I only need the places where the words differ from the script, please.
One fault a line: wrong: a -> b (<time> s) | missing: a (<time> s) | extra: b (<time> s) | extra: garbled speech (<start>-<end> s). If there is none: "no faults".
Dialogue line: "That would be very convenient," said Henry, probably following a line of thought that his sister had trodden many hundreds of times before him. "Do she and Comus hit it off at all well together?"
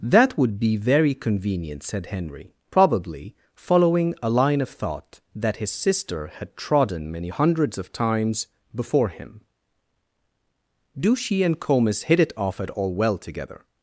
no faults